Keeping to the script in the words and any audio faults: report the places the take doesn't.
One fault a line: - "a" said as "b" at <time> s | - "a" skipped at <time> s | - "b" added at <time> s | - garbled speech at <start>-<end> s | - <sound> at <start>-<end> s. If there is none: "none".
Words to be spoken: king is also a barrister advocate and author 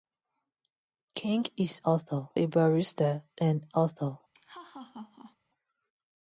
- "also" said as "author" at 1.8 s
- "advocate" skipped at 3.2 s
- laugh at 4.3-5.4 s